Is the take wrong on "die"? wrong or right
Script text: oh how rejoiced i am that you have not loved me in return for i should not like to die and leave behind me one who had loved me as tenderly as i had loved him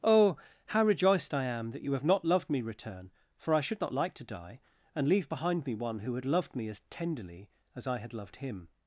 right